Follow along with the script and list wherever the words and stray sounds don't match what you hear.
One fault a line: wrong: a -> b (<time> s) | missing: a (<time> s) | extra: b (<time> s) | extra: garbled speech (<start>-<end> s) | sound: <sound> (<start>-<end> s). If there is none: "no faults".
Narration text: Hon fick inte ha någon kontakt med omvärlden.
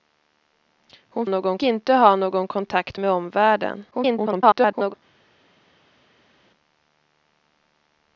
wrong: fick -> någon (1.3 s)
extra: garbled speech (3.9-4.9 s)